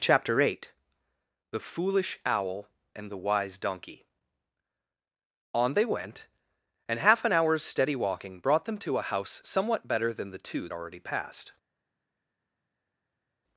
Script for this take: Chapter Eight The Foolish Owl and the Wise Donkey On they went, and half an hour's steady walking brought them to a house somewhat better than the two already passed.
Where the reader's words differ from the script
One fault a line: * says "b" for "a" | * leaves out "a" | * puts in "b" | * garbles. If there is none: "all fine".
all fine